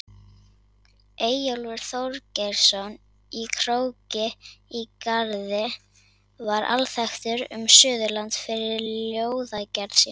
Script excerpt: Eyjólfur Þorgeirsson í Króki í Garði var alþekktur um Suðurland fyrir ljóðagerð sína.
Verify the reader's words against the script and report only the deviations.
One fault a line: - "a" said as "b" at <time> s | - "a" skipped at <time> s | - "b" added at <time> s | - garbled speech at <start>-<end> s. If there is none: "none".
none